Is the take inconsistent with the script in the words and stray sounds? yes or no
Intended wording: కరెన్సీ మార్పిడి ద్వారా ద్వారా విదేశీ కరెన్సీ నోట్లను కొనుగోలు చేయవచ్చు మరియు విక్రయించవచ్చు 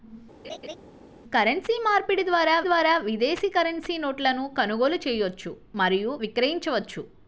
yes